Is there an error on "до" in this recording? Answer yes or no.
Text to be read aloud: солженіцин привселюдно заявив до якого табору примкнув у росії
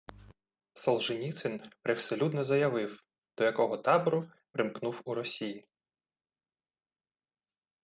no